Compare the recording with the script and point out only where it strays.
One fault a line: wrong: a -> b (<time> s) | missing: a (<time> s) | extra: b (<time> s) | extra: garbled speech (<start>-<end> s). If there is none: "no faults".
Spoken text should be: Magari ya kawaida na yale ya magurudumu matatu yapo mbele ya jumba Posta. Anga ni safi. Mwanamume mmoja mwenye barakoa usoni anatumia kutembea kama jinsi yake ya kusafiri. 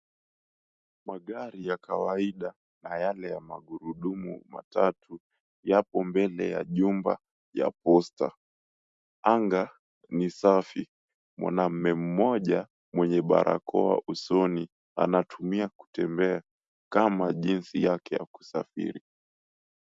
extra: ya (7.5 s)